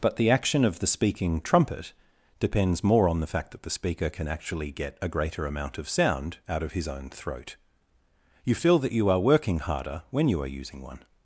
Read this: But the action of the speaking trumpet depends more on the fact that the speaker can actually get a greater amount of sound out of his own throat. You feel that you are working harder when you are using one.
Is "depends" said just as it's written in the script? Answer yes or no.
yes